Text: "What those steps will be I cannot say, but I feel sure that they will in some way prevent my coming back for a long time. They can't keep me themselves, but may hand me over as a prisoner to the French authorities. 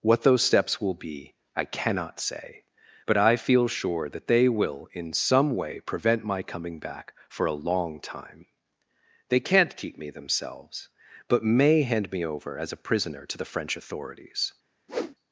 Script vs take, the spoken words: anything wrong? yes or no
no